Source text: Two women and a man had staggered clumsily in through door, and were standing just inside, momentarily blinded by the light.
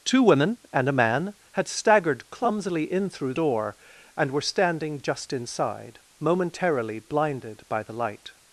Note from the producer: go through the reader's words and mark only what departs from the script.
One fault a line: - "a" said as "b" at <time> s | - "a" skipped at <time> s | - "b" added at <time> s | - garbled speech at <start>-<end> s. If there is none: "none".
none